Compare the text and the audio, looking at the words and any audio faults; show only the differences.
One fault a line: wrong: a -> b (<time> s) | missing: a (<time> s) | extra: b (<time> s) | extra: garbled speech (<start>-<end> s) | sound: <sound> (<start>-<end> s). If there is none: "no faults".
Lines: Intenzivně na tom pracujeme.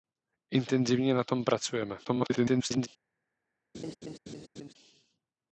extra: garbled speech (2.0-2.9 s)
sound: laugh (3.7-4.7 s)